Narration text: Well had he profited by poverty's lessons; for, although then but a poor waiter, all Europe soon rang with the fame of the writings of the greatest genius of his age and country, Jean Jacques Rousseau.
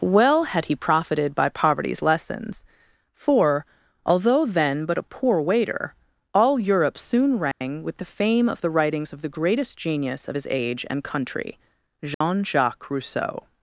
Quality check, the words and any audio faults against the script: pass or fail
fail